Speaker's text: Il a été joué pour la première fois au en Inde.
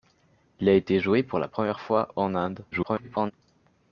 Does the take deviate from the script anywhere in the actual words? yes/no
yes